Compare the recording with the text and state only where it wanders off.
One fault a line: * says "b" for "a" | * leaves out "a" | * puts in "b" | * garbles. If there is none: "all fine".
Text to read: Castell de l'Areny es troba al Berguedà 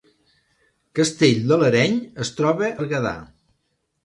* leaves out "al"